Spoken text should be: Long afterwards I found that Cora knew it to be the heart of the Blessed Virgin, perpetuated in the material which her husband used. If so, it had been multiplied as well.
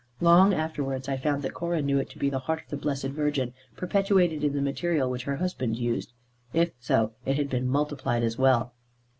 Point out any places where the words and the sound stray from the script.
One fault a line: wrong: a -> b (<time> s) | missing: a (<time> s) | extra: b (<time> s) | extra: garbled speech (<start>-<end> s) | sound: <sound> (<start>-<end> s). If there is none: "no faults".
no faults